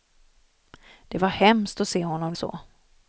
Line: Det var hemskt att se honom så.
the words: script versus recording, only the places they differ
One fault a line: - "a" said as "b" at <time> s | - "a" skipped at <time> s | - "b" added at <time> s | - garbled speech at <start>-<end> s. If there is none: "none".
none